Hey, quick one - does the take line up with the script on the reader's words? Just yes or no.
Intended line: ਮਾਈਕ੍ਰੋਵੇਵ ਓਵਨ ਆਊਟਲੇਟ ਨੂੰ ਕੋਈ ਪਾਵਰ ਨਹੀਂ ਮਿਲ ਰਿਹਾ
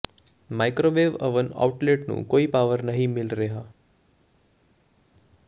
yes